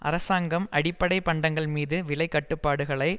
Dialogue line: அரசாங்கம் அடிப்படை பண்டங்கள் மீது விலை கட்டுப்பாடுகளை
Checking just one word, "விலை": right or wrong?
right